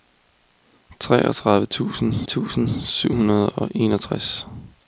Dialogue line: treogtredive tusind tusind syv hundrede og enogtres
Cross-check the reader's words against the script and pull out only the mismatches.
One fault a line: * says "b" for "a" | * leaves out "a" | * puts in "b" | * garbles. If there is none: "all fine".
all fine